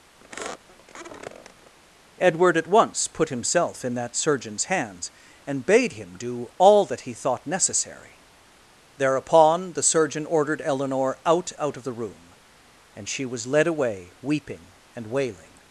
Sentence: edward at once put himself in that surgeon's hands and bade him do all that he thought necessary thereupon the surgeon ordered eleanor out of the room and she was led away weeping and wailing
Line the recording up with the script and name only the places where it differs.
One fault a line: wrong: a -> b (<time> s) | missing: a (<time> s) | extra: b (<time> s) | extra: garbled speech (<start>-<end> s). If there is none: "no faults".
extra: out (11.6 s)